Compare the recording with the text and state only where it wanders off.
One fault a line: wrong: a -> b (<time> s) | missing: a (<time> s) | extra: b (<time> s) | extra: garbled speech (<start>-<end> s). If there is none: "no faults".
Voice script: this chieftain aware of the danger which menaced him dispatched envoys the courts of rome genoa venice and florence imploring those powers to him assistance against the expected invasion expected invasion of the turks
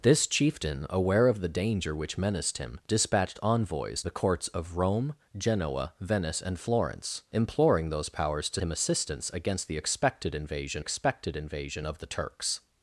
no faults